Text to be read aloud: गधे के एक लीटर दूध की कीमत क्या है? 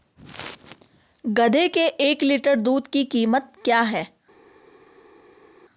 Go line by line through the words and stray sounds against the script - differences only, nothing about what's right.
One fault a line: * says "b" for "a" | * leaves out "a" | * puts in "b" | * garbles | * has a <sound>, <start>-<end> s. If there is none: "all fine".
all fine